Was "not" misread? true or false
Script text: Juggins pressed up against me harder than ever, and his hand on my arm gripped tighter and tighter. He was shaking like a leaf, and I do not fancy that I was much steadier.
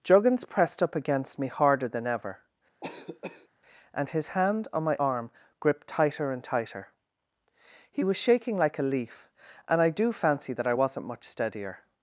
true